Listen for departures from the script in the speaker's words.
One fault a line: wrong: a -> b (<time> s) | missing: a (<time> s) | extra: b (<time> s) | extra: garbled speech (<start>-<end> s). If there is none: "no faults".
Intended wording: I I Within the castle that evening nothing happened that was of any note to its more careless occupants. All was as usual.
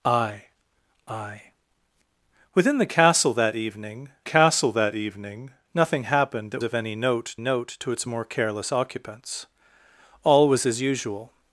extra: castle that evening (4.2 s)
missing: was (6.6 s)
extra: note (7.4 s)